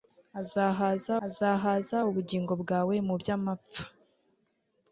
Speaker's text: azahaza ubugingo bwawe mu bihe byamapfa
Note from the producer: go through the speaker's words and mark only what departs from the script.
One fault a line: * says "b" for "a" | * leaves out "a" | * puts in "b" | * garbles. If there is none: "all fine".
* puts in "azahaza"
* leaves out "bihe"